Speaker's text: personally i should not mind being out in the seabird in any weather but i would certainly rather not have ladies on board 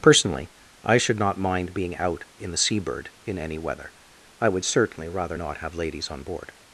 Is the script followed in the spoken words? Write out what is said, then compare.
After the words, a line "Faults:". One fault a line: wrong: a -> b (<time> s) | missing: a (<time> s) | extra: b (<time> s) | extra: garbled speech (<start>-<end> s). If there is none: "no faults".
personally i should not mind being out in the seabird in any weather i would certainly rather not have ladies on board
Faults:
missing: but (3.9 s)